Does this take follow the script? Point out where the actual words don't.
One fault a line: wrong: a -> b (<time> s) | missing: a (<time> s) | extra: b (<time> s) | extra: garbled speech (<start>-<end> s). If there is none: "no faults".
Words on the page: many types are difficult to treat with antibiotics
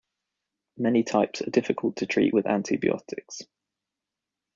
no faults